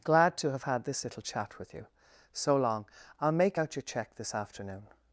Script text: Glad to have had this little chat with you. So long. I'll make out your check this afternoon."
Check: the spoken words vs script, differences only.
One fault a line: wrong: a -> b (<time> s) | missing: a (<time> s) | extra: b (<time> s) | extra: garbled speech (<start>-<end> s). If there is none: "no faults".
no faults